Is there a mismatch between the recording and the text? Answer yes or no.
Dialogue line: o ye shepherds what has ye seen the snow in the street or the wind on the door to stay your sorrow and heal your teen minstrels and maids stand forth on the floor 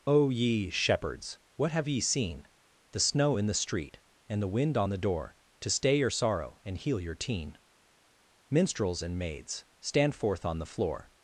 yes